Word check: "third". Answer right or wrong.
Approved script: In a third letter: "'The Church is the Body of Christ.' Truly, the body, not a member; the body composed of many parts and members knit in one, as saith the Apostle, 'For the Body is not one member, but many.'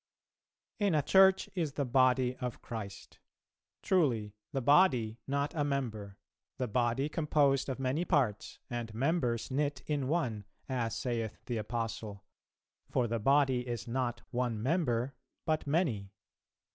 wrong